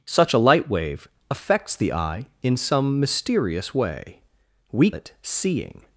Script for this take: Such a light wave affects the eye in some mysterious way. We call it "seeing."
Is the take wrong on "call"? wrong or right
wrong